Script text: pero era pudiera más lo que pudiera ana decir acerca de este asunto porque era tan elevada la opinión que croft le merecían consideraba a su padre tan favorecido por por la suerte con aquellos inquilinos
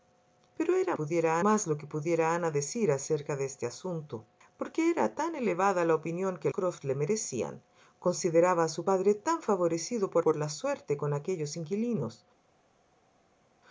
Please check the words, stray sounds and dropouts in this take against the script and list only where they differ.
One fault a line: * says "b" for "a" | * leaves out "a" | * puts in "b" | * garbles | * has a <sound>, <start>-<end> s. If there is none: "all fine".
all fine